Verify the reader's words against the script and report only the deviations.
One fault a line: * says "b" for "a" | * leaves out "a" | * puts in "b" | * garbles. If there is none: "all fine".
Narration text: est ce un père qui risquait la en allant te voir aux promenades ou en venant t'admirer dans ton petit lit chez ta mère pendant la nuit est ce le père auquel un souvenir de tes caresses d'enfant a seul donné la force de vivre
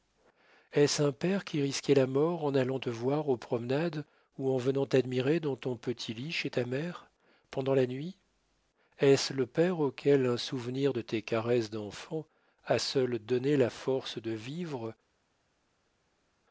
* puts in "mort"